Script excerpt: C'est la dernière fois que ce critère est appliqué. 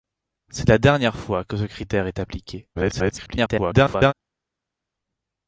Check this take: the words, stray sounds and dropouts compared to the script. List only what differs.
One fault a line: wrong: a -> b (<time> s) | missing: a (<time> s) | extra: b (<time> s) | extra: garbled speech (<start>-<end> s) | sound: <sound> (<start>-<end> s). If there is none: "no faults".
extra: garbled speech (2.7-4.1 s)